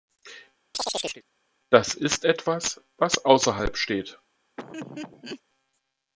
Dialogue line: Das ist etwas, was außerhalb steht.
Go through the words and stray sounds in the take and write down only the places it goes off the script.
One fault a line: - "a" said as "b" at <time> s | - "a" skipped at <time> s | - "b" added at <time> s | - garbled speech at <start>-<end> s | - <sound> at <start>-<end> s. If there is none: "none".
- chirp at 0.7-1.2 s
- laugh at 4.6-5.4 s